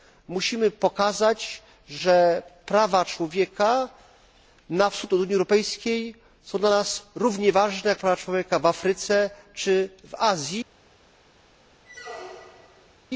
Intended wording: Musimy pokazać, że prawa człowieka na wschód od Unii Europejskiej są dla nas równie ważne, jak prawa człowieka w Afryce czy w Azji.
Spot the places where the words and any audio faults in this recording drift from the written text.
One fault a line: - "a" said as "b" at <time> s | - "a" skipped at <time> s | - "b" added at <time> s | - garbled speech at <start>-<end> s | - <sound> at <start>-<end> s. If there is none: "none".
- squeak at 11.8-13.0 s